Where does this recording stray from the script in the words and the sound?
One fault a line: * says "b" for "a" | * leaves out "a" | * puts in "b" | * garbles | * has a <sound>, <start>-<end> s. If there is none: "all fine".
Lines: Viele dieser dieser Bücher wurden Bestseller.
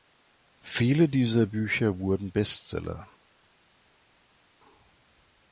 * leaves out "dieser"